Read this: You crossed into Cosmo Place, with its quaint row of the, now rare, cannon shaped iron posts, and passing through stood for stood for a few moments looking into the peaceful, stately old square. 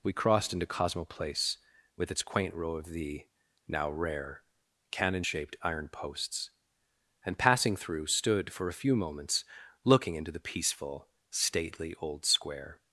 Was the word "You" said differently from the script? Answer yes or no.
yes